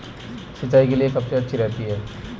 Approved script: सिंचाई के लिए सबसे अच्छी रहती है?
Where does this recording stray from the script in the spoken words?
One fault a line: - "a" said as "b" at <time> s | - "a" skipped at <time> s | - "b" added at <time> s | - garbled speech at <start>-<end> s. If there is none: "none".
none